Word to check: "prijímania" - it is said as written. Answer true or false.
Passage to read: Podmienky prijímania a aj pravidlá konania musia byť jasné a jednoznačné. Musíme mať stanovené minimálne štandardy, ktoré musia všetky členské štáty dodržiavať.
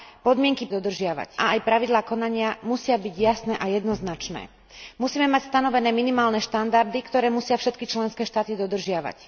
false